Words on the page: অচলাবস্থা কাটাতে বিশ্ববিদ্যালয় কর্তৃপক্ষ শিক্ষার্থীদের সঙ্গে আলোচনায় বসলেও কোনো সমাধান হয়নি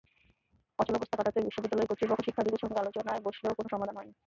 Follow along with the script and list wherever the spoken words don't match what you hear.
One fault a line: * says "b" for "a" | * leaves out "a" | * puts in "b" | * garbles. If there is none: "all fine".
all fine